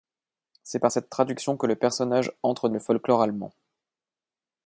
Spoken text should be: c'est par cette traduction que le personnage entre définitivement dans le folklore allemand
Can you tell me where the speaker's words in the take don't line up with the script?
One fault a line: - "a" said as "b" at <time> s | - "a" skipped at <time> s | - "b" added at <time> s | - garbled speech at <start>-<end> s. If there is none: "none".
- "définitivement dans" skipped at 2.7 s